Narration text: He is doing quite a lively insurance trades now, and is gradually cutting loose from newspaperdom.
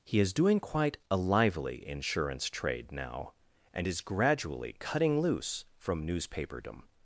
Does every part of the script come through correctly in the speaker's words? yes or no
no